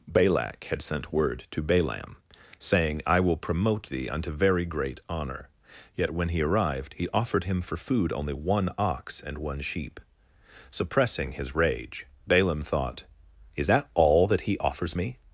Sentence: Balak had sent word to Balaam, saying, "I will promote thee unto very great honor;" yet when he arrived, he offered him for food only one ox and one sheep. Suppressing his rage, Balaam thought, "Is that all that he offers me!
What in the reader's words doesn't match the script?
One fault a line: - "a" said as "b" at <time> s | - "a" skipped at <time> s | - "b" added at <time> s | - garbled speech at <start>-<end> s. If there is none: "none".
none